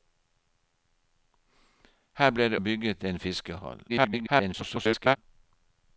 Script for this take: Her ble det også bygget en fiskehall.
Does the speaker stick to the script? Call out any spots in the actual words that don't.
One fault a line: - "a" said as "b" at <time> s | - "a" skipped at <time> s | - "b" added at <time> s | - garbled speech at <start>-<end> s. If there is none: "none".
- "også" skipped at 2.6 s
- garbled speech at 3.9-5.2 s